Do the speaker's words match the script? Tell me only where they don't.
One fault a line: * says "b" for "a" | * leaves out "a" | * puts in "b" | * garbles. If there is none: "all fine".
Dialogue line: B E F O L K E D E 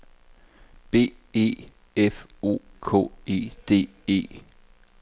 * leaves out "L"